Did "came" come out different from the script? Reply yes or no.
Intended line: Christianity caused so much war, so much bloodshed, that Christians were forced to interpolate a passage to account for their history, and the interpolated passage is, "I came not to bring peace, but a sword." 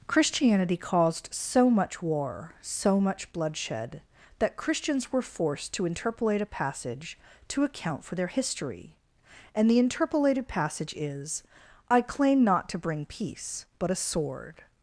yes